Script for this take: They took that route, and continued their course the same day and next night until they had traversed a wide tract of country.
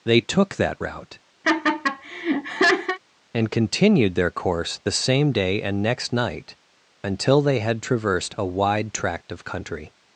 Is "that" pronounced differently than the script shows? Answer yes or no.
no